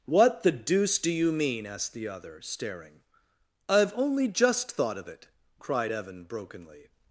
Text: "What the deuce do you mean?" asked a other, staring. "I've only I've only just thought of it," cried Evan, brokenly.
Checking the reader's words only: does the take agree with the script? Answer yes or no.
no